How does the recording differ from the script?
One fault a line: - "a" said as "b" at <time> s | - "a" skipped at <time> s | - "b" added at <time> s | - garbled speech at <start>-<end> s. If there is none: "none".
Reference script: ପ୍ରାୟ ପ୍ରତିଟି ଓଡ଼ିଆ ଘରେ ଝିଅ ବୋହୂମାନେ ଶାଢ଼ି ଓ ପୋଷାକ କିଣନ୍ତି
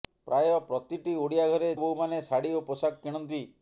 - "ଝିଅ" skipped at 1.7 s